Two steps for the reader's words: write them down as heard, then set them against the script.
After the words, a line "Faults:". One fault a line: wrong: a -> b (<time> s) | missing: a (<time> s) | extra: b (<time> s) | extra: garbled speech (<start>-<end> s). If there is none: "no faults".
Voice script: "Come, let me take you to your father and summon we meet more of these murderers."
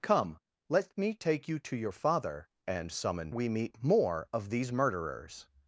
"Come, let me take you to your father and summon we meet more of these murderers."
Faults:
no faults